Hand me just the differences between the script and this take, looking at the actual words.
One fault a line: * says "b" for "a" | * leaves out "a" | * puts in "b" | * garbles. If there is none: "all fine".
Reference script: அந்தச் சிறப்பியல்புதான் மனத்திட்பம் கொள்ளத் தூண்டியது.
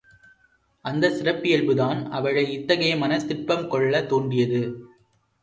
* puts in "அவளை இத்தகைய"